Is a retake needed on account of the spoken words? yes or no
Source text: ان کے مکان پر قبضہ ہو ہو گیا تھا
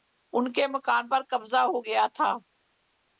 yes